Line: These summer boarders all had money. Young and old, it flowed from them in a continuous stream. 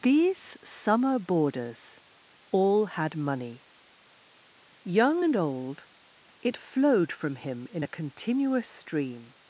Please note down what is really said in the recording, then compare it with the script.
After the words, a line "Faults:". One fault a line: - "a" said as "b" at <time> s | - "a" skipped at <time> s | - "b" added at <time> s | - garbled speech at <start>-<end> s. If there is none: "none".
These summer boarders all had money. Young and old, it flowed from him in a continuous stream.
Faults:
- "them" said as "him" at 7.4 s